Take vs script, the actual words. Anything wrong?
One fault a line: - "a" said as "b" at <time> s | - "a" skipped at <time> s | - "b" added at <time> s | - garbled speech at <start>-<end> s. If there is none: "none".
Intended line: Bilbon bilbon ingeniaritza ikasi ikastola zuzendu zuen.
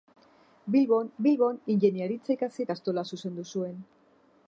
none